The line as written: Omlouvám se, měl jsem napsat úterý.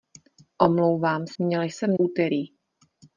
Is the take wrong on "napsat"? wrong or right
wrong